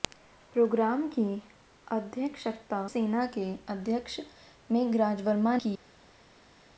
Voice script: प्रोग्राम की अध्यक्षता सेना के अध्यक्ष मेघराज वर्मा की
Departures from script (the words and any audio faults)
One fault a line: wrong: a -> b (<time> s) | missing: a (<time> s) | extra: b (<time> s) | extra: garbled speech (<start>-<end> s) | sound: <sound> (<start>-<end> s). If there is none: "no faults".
no faults